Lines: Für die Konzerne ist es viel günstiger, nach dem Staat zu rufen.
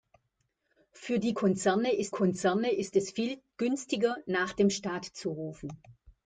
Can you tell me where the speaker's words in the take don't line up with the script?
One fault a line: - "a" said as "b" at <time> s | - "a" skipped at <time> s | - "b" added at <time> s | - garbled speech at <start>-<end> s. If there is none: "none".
- "Konzerne ist" added at 2.1 s